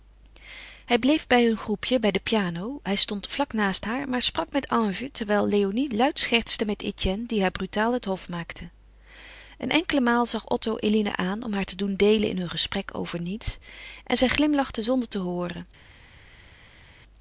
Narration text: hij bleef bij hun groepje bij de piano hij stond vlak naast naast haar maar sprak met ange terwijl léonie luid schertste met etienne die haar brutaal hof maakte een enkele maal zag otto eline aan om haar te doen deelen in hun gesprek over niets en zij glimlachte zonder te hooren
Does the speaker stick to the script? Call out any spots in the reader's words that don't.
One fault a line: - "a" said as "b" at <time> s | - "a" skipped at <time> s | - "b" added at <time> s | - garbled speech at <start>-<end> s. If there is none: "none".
- "naast" skipped at 3.9 s
- "het" added at 7.9 s